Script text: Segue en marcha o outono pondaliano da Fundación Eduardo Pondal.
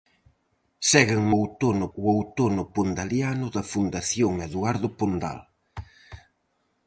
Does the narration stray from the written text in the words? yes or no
yes